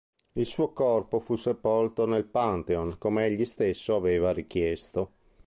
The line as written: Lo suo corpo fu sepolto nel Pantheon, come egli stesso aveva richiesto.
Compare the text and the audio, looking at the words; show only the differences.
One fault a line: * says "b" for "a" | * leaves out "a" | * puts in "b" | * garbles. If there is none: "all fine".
* says "Il" for "Lo"